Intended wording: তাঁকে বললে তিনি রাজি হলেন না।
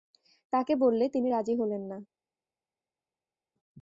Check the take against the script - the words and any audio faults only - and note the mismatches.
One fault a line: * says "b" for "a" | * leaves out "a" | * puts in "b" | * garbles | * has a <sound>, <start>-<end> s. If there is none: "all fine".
all fine